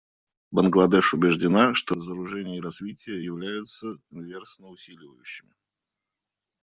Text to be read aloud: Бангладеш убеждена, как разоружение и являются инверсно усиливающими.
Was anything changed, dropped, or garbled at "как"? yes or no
yes